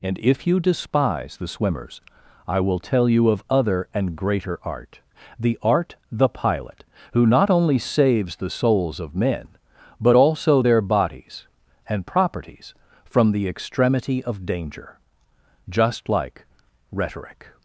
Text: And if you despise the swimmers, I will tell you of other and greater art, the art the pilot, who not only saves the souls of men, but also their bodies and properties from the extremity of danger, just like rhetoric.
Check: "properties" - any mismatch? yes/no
no